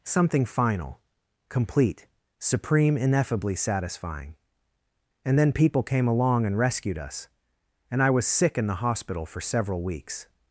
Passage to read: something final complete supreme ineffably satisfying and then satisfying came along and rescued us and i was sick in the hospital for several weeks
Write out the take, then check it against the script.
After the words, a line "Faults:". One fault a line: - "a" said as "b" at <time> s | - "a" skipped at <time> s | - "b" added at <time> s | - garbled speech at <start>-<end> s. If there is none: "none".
something final complete supreme ineffably satisfying and then people came along and rescued us and i was sick in the hospital for several weeks
Faults:
- "satisfying" said as "people" at 5.5 s